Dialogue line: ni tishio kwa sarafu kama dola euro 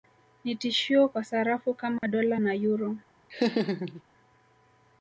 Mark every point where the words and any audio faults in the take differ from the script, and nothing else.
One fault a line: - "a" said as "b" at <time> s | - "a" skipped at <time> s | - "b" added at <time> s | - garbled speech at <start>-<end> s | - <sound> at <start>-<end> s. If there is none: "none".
- dropout at 2.0-2.0 s
- "na" added at 2.4 s
- laugh at 3.3-4.0 s